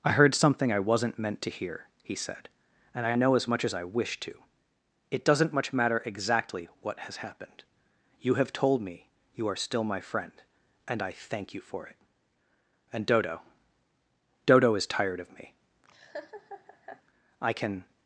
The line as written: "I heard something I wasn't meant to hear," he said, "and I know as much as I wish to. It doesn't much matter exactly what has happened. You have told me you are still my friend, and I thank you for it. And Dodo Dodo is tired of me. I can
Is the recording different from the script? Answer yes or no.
no